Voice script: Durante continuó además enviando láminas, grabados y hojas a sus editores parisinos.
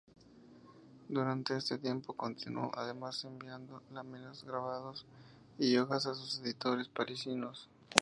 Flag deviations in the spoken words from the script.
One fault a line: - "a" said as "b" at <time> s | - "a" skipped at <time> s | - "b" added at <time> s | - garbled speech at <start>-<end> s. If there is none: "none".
- "este tiempo" added at 1.6 s